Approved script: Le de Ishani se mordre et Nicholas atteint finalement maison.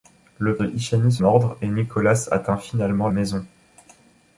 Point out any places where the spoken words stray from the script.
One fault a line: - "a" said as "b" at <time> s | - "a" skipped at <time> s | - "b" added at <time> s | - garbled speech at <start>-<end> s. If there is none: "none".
none